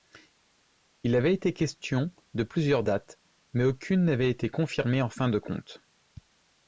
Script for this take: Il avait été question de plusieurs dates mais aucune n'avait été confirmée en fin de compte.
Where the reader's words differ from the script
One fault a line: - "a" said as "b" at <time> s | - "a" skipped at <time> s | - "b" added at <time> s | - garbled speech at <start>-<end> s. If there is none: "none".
none